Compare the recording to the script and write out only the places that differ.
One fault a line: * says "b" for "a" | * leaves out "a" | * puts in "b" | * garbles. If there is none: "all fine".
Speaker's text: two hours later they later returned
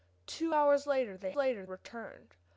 all fine